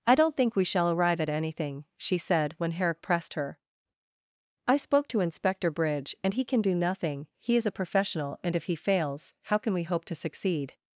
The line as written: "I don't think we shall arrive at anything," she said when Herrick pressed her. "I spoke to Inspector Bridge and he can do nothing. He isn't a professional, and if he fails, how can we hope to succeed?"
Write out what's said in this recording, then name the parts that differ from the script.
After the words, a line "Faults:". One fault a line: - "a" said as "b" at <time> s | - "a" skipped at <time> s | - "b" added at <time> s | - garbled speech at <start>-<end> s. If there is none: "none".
"I don't think we shall arrive at anything," she said when Herrick pressed her. "I spoke to Inspector Bridge and he can do nothing. He is a professional, and if he fails, how can we hope to succeed?"
Faults:
- "isn't" said as "is" at 7.5 s